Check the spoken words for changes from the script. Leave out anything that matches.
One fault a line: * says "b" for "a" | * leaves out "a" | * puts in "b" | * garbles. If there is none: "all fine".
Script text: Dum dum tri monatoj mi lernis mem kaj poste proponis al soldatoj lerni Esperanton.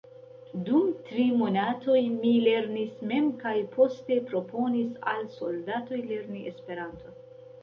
* leaves out "dum"